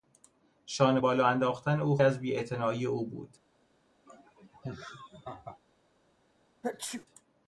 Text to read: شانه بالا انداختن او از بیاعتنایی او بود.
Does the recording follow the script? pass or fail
pass